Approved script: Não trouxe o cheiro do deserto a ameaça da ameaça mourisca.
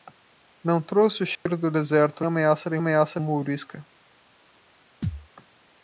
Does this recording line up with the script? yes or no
yes